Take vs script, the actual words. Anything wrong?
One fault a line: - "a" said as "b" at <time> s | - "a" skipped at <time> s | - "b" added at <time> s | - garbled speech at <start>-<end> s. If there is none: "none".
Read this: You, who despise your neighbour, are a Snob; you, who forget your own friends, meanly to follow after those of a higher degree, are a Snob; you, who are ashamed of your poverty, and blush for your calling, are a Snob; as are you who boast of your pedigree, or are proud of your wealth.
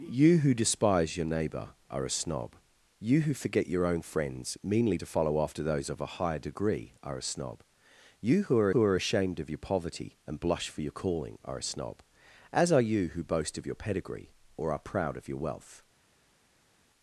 - "who are" added at 8.7 s